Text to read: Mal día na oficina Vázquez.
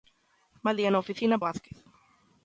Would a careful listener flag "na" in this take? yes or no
no